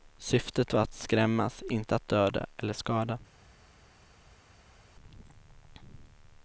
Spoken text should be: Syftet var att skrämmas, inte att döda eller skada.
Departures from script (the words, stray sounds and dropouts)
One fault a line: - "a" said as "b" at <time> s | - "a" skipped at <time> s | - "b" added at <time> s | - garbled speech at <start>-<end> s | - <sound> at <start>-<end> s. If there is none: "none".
none